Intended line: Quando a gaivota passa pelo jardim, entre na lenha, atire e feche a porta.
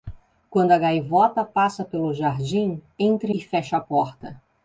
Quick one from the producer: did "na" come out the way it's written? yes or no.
no